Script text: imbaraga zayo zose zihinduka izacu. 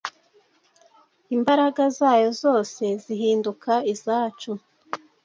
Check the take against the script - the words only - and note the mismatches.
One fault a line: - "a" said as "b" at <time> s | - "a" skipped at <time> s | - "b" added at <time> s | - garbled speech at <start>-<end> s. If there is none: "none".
none